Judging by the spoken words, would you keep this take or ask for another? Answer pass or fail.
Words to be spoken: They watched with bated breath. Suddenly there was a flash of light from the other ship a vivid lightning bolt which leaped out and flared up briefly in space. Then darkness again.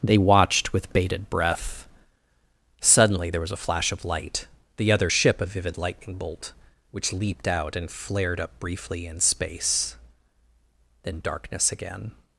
fail